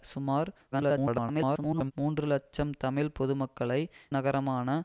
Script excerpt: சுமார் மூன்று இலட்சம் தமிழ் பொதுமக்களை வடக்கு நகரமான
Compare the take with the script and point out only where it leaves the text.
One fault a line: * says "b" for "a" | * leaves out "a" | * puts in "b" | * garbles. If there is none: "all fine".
* garbles
* leaves out "வடக்கு"